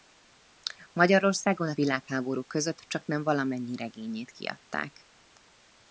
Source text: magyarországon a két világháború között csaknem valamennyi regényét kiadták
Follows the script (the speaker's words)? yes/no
no